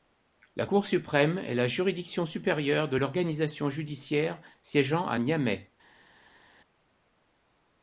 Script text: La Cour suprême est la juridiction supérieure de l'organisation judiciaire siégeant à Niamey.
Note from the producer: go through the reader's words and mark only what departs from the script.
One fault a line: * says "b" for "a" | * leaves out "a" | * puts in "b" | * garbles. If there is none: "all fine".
all fine